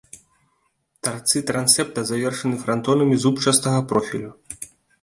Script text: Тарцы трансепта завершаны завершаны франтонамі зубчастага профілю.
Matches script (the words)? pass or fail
fail